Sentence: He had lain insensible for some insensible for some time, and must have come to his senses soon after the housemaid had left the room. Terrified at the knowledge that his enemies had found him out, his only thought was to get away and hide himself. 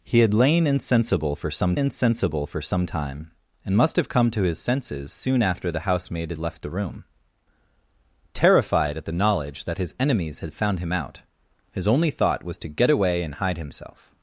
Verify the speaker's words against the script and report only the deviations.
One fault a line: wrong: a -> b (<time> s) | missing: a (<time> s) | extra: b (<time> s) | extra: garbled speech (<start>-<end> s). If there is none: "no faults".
no faults